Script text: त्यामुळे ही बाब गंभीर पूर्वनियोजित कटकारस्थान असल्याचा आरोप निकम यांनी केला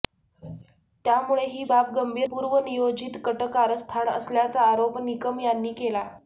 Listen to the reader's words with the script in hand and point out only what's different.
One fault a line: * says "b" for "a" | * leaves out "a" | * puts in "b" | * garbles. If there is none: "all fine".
all fine